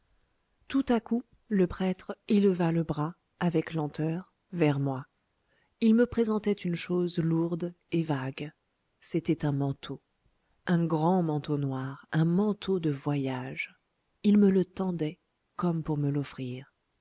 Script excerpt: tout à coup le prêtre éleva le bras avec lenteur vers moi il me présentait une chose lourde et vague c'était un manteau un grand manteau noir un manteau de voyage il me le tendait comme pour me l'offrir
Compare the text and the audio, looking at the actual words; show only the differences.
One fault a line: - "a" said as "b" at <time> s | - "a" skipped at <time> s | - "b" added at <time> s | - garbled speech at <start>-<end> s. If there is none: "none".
none